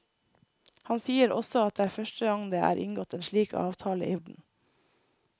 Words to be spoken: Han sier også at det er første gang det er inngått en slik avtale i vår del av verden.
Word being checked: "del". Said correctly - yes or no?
no